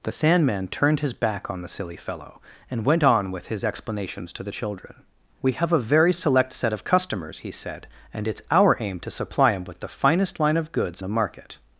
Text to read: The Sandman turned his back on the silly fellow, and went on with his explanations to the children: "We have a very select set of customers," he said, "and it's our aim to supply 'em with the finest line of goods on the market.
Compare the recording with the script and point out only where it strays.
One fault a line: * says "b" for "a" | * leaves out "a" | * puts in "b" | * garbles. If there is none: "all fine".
* leaves out "on"